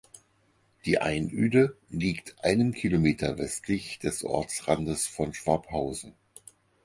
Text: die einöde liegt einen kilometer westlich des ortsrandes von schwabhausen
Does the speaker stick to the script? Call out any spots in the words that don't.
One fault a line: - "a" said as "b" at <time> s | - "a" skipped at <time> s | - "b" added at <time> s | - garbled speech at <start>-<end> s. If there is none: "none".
none